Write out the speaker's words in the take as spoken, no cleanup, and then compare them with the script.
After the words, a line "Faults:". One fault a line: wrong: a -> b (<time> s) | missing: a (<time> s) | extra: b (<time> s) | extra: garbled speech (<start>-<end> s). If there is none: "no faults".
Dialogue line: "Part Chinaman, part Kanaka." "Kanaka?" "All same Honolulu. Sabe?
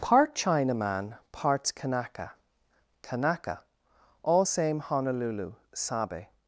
"Part Chinaman, parts Kanaka." "Kanaka?" "All same Honolulu. Sabe?
Faults:
wrong: part -> parts (1.3 s)